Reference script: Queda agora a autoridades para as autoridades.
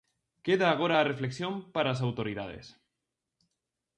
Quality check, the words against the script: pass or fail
fail